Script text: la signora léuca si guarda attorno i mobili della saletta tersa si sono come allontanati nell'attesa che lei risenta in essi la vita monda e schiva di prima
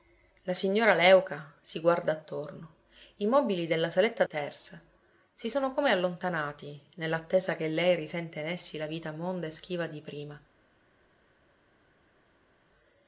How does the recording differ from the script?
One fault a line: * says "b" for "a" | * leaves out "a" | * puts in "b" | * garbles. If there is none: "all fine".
all fine